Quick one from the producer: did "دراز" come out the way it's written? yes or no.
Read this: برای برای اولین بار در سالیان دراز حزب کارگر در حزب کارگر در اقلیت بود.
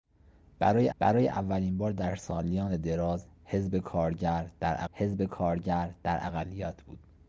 yes